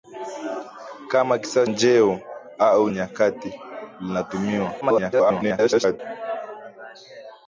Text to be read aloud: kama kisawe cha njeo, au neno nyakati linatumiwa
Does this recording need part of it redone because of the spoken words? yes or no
yes